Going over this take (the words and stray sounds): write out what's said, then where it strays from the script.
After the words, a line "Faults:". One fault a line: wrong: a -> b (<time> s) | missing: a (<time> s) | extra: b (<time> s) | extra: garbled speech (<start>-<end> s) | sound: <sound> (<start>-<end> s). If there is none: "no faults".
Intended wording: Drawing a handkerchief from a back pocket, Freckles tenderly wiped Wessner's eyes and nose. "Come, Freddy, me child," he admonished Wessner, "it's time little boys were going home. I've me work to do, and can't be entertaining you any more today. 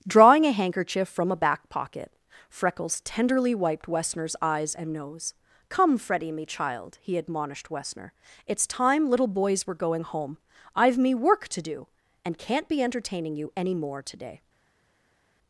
Drawing a handkerchief from a back pocket, Freckles tenderly wiped Wessner's eyes and nose. "Come, Freddy, me child," he admonished Wessner, "it's time little boys were going home. I've me work to do, and can't be entertaining you any more today.
Faults:
no faults